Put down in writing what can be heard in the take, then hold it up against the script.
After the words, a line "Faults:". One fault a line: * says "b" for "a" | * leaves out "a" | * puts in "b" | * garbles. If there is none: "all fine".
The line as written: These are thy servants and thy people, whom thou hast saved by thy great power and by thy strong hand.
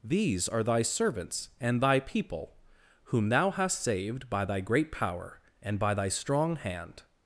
These are thy servants and thy people, whom thou hast saved by thy great power and by thy strong hand.
Faults:
all fine